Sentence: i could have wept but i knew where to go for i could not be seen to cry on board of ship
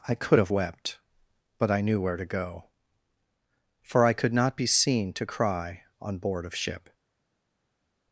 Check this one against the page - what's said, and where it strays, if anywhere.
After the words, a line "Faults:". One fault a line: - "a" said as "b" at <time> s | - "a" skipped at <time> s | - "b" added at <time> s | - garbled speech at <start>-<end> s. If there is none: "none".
i could have wept but i knew where to go for i could not be seen to cry on board of ship
Faults:
none